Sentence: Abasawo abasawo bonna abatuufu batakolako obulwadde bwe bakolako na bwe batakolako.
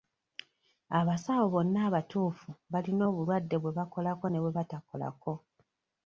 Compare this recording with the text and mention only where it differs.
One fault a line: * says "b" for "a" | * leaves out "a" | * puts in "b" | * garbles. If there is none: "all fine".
* leaves out "abasawo"
* says "balina" for "batakolako"
* says "ne" for "na"